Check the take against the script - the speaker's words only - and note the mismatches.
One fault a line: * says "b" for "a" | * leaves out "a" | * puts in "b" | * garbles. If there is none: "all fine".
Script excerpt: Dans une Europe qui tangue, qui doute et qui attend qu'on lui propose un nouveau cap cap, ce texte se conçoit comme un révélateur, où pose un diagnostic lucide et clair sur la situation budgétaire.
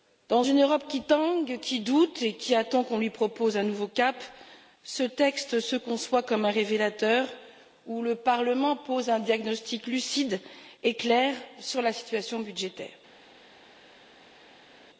* leaves out "cap"
* puts in "le Parlement"